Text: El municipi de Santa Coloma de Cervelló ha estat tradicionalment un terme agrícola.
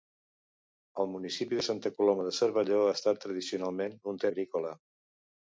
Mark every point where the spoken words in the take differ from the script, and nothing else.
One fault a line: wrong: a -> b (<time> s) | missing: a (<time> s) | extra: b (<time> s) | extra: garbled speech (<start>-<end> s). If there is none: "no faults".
missing: terme (4.3 s)